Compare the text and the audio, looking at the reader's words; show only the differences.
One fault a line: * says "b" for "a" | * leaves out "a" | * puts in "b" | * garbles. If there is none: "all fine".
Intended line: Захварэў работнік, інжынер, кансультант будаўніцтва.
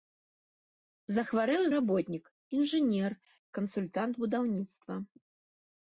all fine